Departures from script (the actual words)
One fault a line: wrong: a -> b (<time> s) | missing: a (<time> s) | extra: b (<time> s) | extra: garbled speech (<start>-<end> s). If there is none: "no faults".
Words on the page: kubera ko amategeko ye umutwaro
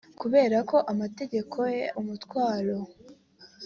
no faults